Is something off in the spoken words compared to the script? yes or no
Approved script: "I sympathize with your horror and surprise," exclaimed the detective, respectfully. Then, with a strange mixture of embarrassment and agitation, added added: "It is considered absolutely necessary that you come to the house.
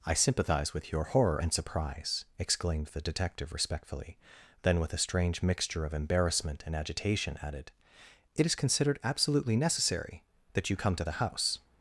yes